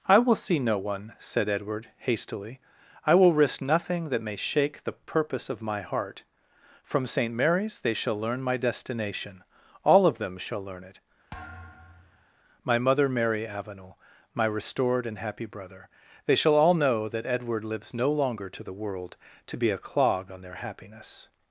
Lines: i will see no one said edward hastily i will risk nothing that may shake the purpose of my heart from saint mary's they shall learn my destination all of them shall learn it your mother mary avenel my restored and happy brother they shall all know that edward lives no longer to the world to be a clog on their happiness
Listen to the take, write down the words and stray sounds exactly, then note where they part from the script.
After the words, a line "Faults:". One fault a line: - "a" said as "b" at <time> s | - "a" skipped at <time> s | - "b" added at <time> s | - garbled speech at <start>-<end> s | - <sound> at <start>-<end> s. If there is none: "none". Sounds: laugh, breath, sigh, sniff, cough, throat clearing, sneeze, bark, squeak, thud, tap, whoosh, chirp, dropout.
i will see no one said edward hastily i will risk nothing that may shake the purpose of my heart from saint mary's they shall learn my destination all of them shall learn it my mother mary avenel my restored and happy brother they shall all know that edward lives no longer to the world to be a clog on their happiness
Faults:
- thud at 11.3-12.3 s
- "your" said as "my" at 12.6 s